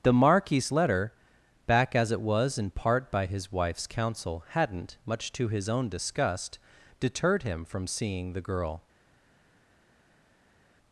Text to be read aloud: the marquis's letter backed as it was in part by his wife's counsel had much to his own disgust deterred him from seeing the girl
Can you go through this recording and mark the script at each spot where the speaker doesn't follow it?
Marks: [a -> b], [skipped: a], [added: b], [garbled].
the marquis's letter [backed -> back] as it was in part by his wife's counsel [had -> hadn't] much to his own disgust deterred him from seeing the girl